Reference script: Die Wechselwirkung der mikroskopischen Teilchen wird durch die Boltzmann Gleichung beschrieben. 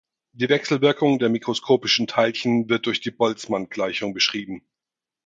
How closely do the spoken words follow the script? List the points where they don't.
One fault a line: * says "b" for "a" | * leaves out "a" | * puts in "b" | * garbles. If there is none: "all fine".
all fine